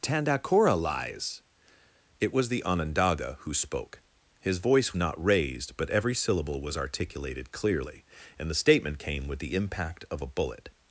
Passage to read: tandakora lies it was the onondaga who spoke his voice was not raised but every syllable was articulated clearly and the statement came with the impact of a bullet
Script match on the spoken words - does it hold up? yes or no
no